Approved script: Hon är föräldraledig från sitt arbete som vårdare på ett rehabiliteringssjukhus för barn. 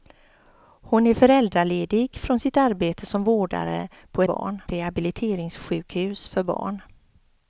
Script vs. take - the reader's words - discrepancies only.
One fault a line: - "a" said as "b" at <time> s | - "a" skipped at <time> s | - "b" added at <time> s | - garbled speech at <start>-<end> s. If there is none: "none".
- "ett" said as "barn" at 4.2 s